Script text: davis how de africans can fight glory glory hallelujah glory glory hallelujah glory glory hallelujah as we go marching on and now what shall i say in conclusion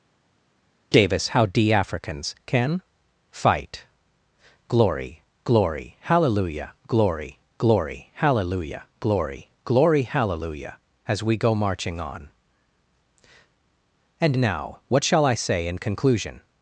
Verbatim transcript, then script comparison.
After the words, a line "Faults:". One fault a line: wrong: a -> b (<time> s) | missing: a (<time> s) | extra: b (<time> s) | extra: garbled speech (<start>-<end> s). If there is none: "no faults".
davis how de africans can fight glory glory hallelujah glory glory hallelujah glory glory hallelujah as we go marching on and now what shall i say in conclusion
Faults:
no faults